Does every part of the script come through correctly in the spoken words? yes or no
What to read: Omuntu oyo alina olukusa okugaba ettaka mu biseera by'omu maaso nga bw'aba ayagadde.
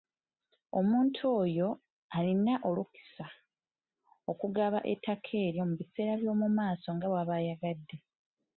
no